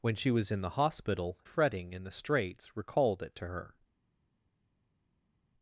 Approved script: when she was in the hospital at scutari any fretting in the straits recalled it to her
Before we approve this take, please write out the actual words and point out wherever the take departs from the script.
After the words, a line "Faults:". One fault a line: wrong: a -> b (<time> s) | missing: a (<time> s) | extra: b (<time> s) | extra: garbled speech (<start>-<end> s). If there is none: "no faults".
when she was in the hospital fretting in the straits recalled it to her
Faults:
missing: at scutari any (1.4 s)